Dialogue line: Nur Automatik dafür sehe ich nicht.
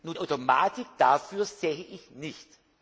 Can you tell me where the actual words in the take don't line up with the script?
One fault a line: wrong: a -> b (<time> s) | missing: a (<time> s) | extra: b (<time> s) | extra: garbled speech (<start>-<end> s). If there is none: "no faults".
no faults